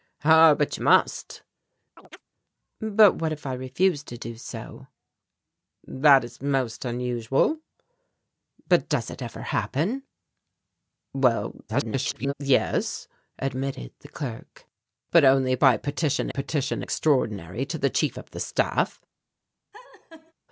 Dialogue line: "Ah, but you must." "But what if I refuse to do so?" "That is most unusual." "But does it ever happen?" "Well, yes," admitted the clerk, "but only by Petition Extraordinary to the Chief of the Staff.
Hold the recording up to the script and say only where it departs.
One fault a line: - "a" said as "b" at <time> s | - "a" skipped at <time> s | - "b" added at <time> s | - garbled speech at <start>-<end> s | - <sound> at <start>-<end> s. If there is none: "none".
- chirp at 2.0-2.2 s
- garbled speech at 11.7-12.3 s
- "Petition" added at 16.3 s
- laugh at 19.7-20.3 s